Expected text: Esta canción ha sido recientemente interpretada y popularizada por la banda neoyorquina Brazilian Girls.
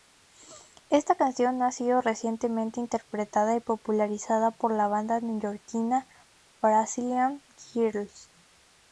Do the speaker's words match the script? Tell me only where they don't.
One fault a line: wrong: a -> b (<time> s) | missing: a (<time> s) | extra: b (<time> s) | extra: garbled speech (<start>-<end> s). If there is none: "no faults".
no faults